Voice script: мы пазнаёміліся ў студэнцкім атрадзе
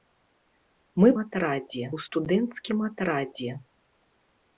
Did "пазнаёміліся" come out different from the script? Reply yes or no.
yes